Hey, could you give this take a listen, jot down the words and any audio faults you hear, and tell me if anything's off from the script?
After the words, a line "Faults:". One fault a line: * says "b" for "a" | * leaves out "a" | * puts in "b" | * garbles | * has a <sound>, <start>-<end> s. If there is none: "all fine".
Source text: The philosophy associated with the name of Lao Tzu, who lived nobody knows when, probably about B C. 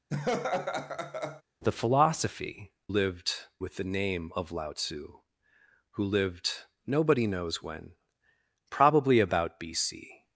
The philosophy lived with the name of Lao Tzu, who lived nobody knows when, probably about B C.
Faults:
* has a laugh, 0.1-1.4 s
* says "lived" for "associated"